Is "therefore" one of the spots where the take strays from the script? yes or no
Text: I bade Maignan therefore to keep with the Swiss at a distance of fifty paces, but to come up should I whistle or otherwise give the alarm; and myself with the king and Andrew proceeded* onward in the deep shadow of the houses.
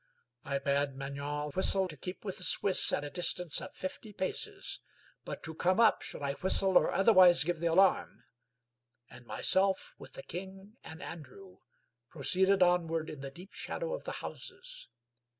yes